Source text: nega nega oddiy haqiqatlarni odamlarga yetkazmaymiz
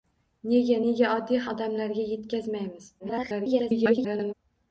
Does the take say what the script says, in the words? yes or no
no